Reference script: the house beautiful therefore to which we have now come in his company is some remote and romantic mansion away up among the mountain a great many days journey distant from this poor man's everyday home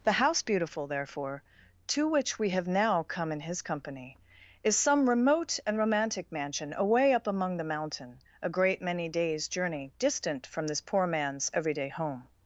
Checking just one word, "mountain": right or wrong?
right